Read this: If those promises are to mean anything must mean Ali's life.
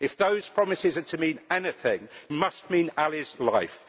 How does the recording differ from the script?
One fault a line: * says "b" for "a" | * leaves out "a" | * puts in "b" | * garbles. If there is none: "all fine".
all fine